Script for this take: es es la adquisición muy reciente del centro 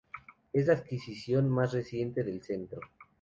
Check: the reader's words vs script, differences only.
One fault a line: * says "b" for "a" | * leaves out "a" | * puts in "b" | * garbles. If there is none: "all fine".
* leaves out "es"
* says "más" for "muy"